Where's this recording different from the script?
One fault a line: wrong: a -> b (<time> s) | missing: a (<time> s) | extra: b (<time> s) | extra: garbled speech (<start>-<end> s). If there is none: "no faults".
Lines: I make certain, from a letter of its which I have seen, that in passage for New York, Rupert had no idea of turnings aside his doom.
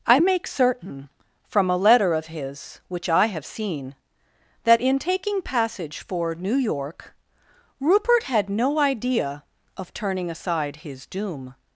wrong: its -> his (2.3 s)
extra: taking (5.0 s)
wrong: turnings -> turning (9.9 s)